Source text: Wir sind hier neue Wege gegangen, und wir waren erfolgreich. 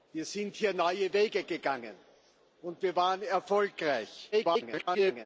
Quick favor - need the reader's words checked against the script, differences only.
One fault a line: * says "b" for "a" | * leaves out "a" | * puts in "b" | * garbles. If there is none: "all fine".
* garbles